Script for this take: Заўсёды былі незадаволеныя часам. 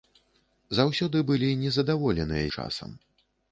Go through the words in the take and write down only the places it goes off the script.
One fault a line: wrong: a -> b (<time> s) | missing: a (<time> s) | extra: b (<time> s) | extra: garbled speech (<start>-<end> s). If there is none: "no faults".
no faults